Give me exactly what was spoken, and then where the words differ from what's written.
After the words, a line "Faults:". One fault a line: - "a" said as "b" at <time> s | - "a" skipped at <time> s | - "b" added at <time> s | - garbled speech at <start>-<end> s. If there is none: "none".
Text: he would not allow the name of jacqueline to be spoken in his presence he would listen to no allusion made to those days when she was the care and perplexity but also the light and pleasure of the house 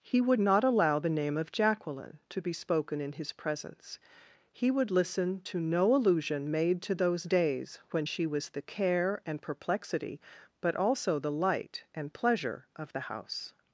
he would not allow the name of jacqueline to be spoken in his presence he would listen to no allusion made to those days when she was the care and perplexity but also the light and pleasure of the house
Faults:
none